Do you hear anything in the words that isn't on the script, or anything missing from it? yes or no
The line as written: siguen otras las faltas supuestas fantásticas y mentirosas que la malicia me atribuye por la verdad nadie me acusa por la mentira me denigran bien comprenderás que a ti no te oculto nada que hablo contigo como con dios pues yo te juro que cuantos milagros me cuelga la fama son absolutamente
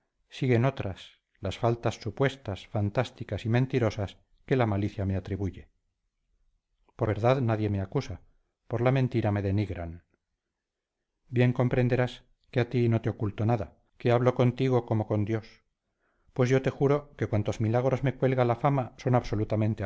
yes